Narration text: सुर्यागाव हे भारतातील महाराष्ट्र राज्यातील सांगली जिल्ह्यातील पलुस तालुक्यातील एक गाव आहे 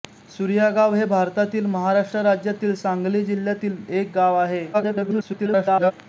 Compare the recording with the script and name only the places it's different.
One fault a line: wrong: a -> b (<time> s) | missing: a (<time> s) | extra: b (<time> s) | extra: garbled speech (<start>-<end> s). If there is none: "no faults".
missing: पलुस तालुक्यातील (3.8 s)
extra: garbled speech (4.7-5.9 s)